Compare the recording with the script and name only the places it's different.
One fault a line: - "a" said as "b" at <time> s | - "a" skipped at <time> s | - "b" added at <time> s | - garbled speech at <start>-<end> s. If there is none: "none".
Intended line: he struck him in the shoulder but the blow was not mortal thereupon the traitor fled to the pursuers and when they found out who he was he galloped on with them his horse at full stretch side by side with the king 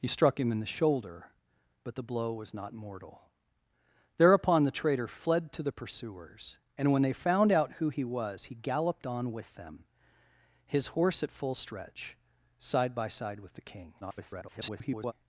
- garbled speech at 14.0-15.1 s